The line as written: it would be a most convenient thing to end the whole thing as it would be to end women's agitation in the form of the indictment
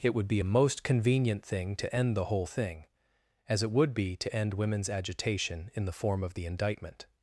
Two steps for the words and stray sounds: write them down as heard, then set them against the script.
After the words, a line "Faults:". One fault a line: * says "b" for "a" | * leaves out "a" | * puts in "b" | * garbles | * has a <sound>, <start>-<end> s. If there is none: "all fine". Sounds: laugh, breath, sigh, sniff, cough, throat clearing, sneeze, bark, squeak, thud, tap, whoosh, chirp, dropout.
it would be a most convenient thing to end the whole thing as it would be to end women's agitation in the form of the indictment
Faults:
all fine